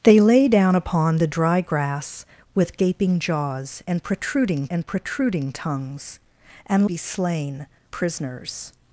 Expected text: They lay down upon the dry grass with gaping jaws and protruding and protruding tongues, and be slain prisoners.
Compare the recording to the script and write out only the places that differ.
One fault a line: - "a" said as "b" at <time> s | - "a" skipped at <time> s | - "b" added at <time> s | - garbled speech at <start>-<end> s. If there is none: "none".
none